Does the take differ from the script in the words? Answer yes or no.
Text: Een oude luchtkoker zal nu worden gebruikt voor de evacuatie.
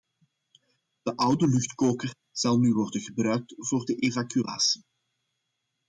yes